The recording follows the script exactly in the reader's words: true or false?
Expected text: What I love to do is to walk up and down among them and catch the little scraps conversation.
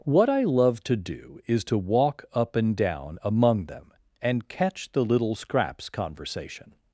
true